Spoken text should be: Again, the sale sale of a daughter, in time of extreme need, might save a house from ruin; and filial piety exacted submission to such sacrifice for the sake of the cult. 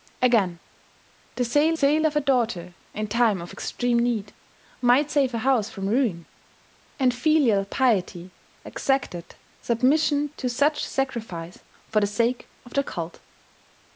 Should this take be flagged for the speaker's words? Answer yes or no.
no